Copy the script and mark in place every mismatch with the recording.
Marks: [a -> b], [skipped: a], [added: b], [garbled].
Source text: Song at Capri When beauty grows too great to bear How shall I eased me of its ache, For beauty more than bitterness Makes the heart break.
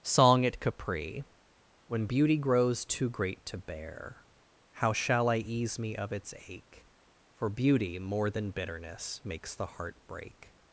Song at Capri When beauty grows too great to bear How shall I [eased -> ease] me of its ache, For beauty more than bitterness Makes the heart break.